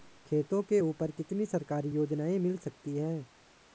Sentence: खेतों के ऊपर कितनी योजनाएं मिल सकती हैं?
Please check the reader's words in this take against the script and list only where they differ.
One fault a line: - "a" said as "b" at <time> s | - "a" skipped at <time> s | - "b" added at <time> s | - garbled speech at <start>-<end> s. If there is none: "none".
- "सरकारी" added at 1.5 s